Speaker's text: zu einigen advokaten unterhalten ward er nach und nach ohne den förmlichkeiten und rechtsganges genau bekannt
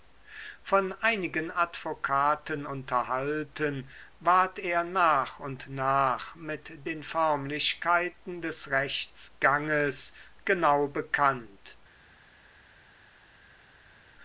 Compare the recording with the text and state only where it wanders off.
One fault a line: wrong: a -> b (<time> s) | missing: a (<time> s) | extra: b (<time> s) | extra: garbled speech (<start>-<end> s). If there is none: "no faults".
wrong: zu -> von (0.6 s)
wrong: ohne -> mit (6.4 s)
wrong: und -> des (8.4 s)